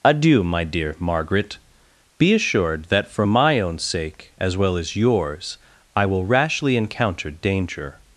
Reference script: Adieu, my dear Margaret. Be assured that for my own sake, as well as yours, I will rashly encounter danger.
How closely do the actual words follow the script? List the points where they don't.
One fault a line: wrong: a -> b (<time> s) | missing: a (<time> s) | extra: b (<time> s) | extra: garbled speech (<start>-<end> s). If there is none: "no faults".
no faults